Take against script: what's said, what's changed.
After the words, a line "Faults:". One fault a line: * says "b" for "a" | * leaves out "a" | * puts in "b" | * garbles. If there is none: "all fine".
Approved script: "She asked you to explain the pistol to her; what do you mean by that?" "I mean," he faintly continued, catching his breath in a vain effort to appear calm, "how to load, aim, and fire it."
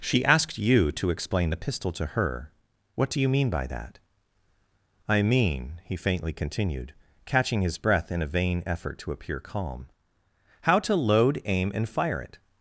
"She asked you to explain the pistol to her; what do you mean by that?" "I mean," he faintly continued, catching his breath in a vain effort to appear calm, "how to load, aim, and fire it."
Faults:
all fine